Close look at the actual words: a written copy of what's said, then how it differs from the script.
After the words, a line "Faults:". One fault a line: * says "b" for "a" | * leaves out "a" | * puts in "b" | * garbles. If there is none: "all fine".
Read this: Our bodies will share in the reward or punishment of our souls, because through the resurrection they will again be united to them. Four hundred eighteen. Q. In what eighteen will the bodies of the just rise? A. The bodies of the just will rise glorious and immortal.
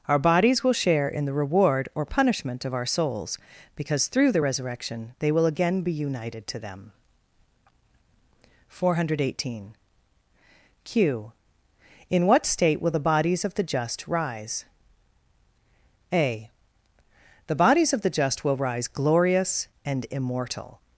Our bodies will share in the reward or punishment of our souls, because through the resurrection they will again be united to them. Four hundred eighteen. Q. In what state will the bodies of the just rise? A. The bodies of the just will rise glorious and immortal.
Faults:
* says "state" for "eighteen"